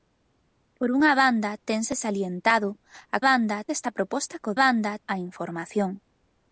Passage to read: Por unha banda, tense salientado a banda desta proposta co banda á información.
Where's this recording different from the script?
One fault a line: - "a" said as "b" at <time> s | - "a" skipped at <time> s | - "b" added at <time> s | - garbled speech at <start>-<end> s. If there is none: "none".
none